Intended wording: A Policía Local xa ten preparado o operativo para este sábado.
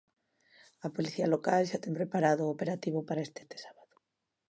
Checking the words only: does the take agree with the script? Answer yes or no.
no